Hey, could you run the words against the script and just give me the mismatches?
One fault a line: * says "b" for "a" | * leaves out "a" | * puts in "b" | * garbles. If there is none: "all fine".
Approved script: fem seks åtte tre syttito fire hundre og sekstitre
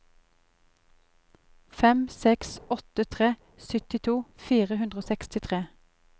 all fine